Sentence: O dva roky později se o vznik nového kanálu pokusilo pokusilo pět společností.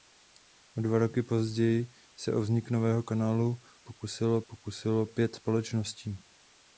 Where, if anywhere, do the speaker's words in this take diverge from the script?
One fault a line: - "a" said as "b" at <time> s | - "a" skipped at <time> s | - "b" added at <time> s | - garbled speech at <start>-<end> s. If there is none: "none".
none